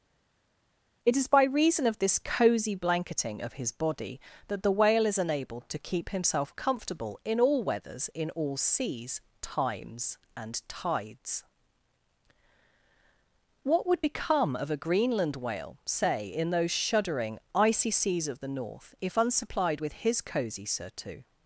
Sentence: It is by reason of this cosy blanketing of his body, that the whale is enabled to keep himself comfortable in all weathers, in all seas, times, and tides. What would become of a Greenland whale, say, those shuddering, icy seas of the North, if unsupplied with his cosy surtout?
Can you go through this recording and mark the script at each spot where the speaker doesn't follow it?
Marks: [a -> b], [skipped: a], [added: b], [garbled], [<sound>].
It is by reason of this cosy blanketing of his body, that the whale is enabled to keep himself comfortable in all weathers, in all seas, times, and tides. What would become of a Greenland whale, say, [added: in] those shuddering, icy seas of the North, if unsupplied with his cosy surtout?